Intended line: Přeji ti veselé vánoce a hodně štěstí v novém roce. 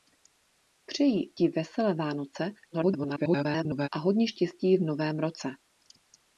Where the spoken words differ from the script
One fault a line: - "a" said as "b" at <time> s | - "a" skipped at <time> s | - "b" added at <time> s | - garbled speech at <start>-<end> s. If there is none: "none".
- garbled speech at 2.7-3.9 s